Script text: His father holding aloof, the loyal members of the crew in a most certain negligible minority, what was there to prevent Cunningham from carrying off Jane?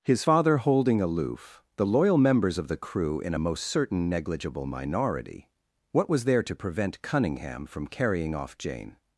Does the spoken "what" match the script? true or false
true